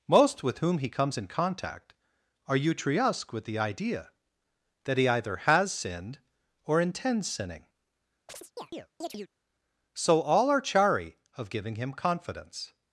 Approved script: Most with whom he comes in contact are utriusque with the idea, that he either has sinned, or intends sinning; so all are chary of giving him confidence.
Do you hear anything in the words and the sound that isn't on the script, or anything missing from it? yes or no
yes